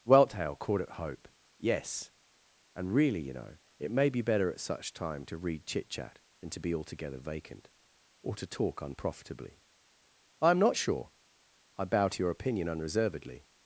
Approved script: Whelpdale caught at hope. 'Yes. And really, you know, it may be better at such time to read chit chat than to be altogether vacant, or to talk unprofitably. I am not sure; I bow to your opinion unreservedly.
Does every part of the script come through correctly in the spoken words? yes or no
yes